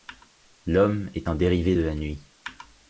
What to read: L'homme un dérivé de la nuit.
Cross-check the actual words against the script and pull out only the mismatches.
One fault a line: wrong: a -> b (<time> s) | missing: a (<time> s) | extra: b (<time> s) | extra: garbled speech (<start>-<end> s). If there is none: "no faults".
extra: est (1.1 s)